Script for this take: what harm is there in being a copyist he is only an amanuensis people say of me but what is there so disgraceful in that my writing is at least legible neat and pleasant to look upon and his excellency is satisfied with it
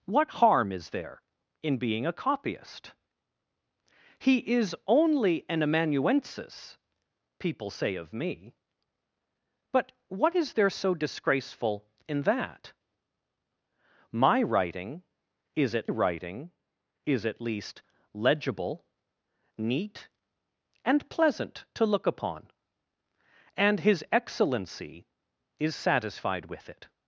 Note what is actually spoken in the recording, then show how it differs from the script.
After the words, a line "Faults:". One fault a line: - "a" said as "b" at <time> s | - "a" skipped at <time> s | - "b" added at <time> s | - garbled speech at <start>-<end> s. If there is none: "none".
what harm is there in being a copyist he is only an amanuensis people say of me but what is there so disgraceful in that my writing is at writing is at least legible neat and pleasant to look upon and his excellency is satisfied with it
Faults:
- "writing is at" added at 15.9 s